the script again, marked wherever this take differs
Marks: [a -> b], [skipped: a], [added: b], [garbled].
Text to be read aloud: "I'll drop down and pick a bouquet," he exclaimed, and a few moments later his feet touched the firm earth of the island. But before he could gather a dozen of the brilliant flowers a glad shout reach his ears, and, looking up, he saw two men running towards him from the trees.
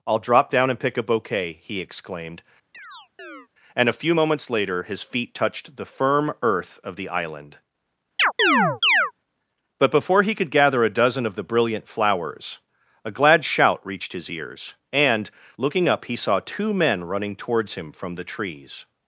"I'll drop down and pick a bouquet," he exclaimed, and a few moments later his feet touched the firm earth of the island. But before he could gather a dozen of the brilliant flowers a glad shout [reach -> reached] his ears, and, looking up, he saw two men running towards him from the trees.